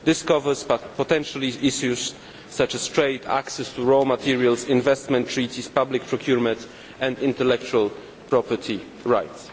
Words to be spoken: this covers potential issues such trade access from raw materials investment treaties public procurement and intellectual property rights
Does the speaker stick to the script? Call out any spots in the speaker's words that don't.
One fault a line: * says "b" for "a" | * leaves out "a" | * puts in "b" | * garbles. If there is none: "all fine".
* puts in "as"
* says "to" for "from"